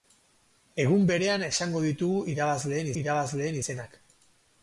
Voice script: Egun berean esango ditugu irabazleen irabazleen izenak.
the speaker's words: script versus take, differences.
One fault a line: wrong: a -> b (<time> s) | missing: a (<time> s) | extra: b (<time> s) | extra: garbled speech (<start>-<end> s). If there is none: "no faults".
no faults